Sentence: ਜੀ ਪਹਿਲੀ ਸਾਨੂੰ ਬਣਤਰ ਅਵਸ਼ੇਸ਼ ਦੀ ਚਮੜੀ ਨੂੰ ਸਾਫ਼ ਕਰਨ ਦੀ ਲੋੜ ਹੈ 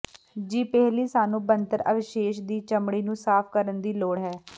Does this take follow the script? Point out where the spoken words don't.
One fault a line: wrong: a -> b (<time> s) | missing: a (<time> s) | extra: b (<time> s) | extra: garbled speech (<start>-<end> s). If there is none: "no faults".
no faults